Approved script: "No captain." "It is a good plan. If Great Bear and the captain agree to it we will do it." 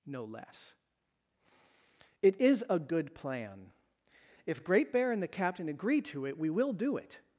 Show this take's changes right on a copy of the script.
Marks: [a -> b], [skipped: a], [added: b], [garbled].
"No [captain." -> less] "It is a good plan. If Great Bear and the captain agree to it we will do it."